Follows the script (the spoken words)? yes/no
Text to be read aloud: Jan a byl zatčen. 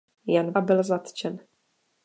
yes